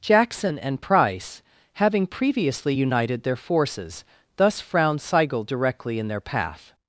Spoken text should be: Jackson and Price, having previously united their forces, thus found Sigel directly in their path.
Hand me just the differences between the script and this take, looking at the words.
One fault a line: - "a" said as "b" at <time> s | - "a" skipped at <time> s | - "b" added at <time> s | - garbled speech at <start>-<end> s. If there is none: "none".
- "found" said as "frowned" at 4.6 s